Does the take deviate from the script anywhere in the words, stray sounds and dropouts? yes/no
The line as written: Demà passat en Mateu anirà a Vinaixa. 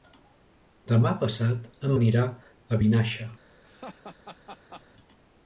yes